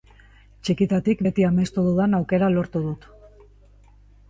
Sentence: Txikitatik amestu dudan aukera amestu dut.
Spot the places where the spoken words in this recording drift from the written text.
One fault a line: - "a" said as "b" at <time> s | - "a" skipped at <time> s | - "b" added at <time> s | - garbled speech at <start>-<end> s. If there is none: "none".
- "beti" added at 1.2 s
- "amestu" said as "lortu" at 2.6 s